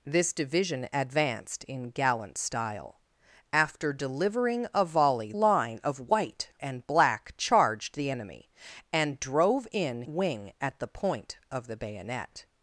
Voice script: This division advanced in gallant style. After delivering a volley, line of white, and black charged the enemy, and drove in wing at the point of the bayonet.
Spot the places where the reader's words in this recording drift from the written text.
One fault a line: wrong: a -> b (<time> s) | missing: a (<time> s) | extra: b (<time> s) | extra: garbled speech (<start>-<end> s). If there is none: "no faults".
no faults